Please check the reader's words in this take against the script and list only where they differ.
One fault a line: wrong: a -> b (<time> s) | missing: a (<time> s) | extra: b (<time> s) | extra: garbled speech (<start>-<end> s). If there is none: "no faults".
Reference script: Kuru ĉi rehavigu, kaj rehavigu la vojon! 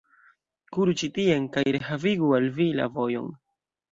wrong: rehavigu -> tien (1.2 s)
extra: al vi (2.4 s)